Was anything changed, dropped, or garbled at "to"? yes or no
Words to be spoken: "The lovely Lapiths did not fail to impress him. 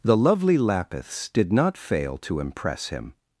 no